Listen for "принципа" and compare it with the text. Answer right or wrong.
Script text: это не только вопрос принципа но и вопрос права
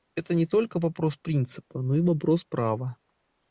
right